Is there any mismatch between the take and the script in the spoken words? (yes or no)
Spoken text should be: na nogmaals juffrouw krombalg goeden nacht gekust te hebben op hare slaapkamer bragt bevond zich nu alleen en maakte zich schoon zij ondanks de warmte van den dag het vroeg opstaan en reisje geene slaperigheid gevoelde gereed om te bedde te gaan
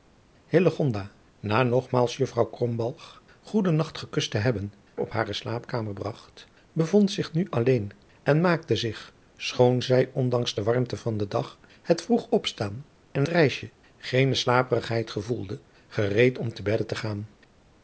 no